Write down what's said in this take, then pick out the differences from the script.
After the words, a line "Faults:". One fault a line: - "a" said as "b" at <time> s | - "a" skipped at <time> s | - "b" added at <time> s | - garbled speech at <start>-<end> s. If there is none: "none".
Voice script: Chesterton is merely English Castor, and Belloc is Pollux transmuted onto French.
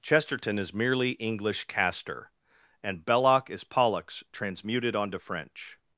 Chesterton is merely English Castor, and Belloc is Pollux transmuted onto French.
Faults:
none